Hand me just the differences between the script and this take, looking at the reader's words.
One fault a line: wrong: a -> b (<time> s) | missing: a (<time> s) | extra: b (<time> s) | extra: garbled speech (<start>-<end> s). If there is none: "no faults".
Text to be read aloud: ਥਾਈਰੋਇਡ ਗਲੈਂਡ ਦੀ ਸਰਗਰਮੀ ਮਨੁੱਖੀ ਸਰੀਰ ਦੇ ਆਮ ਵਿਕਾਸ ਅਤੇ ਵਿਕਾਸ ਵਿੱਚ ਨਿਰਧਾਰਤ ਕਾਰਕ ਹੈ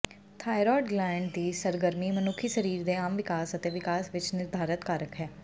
no faults